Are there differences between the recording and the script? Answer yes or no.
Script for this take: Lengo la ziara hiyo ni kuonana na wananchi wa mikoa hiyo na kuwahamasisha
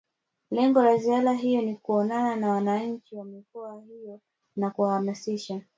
no